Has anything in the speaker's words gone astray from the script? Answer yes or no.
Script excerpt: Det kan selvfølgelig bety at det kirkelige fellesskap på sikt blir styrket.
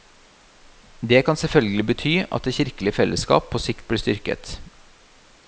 no